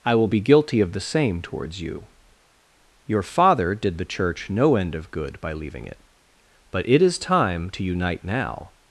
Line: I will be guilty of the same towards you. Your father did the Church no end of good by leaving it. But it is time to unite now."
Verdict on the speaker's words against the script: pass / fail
pass